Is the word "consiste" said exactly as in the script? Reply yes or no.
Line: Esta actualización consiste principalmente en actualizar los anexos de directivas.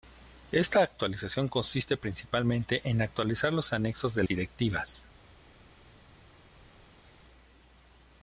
yes